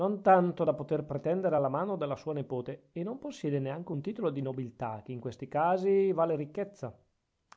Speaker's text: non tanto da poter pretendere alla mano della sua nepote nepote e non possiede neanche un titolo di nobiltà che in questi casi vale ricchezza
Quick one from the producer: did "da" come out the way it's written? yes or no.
yes